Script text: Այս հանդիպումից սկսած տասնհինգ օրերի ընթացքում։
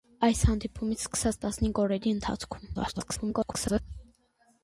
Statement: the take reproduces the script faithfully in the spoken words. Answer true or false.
false